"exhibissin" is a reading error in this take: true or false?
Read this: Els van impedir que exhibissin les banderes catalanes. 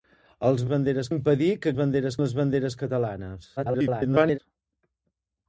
true